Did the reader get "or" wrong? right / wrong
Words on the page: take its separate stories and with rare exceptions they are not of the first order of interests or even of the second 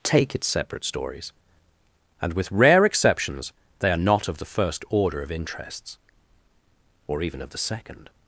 right